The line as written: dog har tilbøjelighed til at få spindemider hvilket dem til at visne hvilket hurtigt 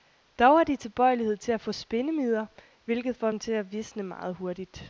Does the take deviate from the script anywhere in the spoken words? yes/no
yes